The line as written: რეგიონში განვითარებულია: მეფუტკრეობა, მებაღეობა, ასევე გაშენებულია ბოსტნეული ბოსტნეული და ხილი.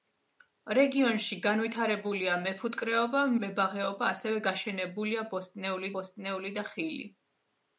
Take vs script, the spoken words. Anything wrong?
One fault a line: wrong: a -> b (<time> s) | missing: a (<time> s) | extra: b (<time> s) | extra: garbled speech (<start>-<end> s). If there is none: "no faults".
no faults